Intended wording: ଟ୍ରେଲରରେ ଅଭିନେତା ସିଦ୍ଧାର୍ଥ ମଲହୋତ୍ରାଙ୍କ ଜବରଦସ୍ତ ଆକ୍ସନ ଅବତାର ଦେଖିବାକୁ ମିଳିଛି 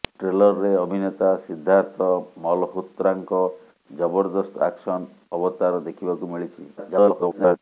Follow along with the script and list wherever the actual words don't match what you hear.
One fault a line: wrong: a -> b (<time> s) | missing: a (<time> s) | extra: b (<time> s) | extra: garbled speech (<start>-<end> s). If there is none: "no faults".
extra: garbled speech (6.8-7.6 s)